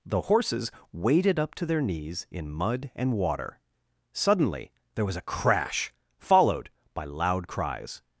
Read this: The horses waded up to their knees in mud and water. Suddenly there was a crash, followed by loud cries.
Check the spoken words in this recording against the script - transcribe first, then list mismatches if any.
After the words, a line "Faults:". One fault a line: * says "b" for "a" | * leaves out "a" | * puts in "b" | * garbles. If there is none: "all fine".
The horses waded up to their knees in mud and water. Suddenly there was a crash, followed by loud cries.
Faults:
all fine